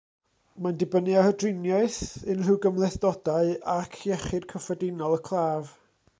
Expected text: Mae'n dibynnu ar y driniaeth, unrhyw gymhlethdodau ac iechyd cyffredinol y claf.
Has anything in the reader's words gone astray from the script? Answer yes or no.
no